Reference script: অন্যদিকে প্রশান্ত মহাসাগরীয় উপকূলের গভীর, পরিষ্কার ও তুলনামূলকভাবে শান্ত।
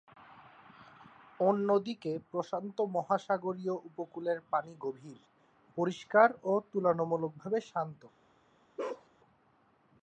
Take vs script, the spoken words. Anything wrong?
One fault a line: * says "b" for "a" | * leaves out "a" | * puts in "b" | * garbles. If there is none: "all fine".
* puts in "পানি"